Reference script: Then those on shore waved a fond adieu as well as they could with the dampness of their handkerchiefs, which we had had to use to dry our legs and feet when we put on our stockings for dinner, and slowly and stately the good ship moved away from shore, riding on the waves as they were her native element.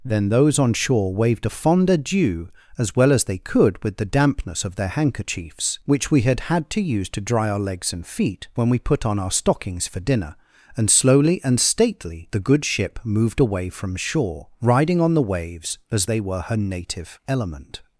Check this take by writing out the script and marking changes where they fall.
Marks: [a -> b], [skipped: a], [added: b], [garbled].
Then those on shore waved a fond adieu as well as they could with the dampness of their handkerchiefs, which we had had to use to dry our legs and feet when we put on our stockings for dinner, and slowly and stately the good ship moved away from shore, riding on the waves as they were her native element.